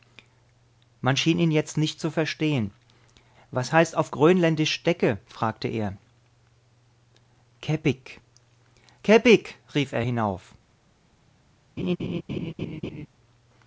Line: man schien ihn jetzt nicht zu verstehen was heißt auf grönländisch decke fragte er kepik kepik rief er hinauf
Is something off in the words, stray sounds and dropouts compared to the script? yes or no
yes